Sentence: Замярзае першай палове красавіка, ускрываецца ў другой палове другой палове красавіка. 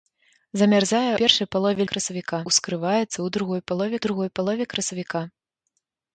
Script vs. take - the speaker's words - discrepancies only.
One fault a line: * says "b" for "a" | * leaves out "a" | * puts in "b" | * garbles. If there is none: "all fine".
all fine